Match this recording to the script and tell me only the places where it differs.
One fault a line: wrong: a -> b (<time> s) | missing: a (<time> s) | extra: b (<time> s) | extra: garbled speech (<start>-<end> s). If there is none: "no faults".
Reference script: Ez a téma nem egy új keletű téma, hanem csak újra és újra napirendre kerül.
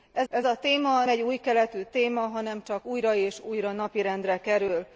extra: ez (0.3 s)
missing: nem (1.1 s)